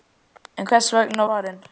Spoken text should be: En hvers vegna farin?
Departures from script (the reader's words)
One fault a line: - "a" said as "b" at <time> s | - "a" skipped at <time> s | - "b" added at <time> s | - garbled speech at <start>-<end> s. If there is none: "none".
none